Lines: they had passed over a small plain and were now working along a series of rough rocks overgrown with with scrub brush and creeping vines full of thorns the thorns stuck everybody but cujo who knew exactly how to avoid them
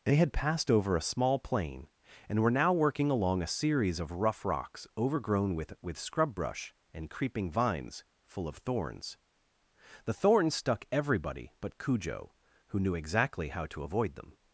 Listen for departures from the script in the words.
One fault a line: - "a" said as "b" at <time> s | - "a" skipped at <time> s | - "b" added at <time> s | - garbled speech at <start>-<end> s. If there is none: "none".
none